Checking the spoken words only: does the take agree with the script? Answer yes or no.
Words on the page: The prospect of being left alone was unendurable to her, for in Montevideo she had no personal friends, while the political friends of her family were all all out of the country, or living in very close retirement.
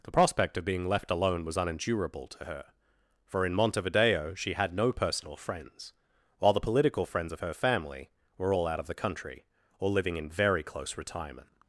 no